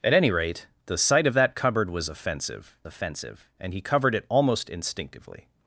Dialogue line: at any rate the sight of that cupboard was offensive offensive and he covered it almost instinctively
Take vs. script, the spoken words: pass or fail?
pass